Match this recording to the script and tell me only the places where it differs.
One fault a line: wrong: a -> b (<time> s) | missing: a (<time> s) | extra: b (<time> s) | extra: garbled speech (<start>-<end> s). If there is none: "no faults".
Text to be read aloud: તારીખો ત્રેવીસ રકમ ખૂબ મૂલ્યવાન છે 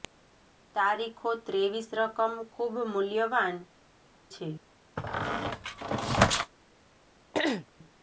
no faults